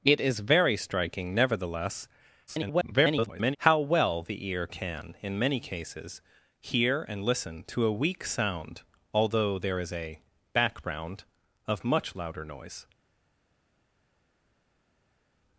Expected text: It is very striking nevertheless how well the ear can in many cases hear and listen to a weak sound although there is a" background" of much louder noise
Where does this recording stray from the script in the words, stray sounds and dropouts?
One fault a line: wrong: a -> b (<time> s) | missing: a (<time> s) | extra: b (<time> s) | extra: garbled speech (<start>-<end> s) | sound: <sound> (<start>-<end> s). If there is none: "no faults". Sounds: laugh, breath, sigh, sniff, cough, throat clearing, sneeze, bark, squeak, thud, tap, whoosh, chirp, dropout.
extra: garbled speech (2.5-3.6 s)